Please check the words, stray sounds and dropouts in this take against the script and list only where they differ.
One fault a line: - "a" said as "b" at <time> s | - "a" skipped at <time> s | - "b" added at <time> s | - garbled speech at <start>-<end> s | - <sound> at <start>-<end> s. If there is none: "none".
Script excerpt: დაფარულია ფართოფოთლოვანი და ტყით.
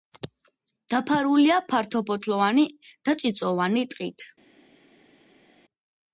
- "წიწვოვანი" added at 3.2 s